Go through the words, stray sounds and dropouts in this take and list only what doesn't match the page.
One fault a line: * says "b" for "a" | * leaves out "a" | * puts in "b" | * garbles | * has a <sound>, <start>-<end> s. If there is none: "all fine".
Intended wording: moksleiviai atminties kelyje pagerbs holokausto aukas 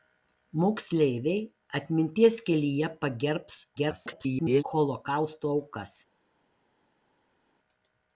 * garbles